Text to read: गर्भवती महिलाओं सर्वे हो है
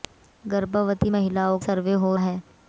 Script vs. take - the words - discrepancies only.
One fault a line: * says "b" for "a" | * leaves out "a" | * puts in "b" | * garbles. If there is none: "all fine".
all fine